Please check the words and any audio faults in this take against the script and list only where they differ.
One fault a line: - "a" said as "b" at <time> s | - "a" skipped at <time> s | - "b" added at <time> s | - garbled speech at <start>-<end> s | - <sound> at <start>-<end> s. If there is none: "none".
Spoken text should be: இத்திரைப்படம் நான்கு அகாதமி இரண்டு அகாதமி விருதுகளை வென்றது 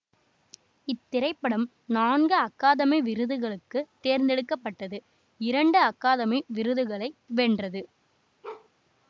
- "விருதுகளுக்கு தேர்ந்தெடுக்க பட்டது" added at 3.0 s
- bark at 8.4-8.7 s